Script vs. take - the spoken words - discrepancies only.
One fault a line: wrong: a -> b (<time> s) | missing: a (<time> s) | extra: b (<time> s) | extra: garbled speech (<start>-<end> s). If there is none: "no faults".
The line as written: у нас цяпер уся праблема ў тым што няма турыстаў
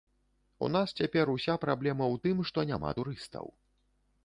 no faults